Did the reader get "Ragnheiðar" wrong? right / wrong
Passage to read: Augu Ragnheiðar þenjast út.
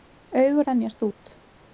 wrong